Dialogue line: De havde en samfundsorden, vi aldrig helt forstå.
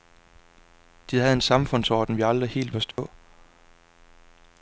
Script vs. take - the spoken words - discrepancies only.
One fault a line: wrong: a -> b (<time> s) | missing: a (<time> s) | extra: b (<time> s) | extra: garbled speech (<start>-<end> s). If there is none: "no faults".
no faults